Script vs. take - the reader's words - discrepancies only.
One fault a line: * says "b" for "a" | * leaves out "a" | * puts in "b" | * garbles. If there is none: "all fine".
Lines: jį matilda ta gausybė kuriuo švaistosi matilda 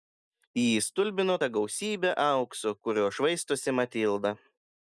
* says "stulbino" for "matilda"
* puts in "aukso"